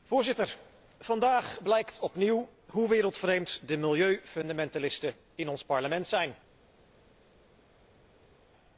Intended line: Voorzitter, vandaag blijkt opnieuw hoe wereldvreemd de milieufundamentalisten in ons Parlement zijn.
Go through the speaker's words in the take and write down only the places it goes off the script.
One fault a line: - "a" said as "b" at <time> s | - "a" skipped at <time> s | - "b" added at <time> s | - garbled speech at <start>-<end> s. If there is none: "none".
none